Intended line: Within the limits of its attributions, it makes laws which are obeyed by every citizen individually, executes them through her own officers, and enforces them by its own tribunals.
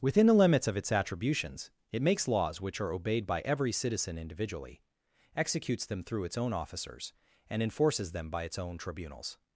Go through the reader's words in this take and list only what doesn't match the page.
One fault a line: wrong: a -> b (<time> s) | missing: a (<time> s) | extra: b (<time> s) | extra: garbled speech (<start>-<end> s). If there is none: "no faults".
wrong: her -> its (6.2 s)